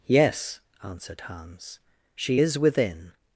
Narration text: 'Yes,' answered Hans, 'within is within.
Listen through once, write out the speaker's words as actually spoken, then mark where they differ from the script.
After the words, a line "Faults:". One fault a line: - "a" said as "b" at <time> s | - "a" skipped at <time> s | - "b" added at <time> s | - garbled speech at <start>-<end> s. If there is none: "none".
'Yes,' answered Hans, 'she is within.
Faults:
- "within" said as "she" at 2.1 s